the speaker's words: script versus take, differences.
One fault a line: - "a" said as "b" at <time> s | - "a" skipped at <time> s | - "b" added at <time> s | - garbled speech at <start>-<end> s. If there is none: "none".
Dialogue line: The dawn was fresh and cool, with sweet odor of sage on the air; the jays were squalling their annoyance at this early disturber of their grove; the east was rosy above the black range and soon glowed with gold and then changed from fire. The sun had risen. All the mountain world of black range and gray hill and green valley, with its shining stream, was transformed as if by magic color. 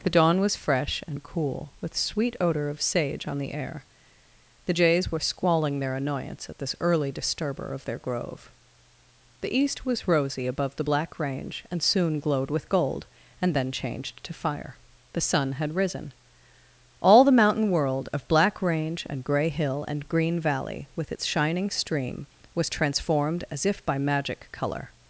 - "from" said as "to" at 14.2 s